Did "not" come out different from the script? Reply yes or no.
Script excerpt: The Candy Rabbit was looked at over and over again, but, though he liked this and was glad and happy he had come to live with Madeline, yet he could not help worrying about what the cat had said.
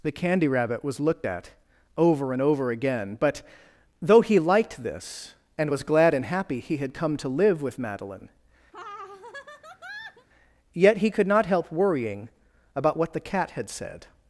no